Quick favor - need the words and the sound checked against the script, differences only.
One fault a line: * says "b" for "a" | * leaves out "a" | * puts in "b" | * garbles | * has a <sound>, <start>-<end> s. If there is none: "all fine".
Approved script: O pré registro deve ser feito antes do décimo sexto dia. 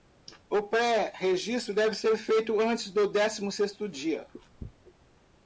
all fine